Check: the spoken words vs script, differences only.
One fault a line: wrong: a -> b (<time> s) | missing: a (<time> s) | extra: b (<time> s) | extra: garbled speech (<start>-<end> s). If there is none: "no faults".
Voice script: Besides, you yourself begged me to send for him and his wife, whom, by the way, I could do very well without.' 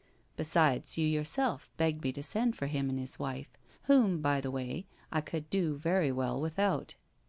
no faults